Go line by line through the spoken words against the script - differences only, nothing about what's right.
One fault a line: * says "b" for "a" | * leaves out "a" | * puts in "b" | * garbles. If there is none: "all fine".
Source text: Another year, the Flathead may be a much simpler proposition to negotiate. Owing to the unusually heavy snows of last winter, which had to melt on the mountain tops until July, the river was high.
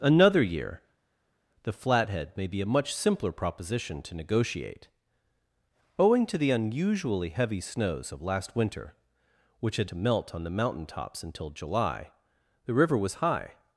all fine